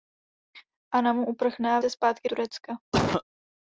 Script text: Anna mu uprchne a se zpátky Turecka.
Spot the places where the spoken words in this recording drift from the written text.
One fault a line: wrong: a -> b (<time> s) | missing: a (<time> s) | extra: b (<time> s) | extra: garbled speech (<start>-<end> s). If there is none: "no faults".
no faults